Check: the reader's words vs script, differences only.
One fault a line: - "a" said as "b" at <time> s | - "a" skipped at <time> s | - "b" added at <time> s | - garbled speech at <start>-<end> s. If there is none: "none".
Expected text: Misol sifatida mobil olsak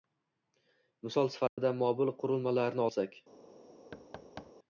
- "qurilmalarni" added at 2.2 s